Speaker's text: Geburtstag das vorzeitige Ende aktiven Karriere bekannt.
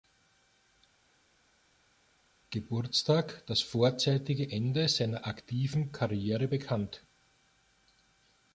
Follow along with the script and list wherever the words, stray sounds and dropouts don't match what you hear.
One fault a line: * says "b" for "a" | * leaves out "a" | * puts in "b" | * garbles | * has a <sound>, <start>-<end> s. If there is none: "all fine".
* puts in "seiner"